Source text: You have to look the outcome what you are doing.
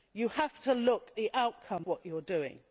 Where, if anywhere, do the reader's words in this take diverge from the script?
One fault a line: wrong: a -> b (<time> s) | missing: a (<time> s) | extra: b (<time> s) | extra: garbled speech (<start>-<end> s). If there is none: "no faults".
no faults